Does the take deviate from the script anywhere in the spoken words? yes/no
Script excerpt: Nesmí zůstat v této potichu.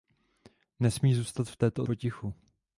no